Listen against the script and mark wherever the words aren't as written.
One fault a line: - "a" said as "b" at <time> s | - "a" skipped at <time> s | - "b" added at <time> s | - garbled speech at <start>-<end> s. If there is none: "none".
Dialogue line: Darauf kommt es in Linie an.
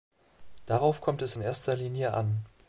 - "erster" added at 1.4 s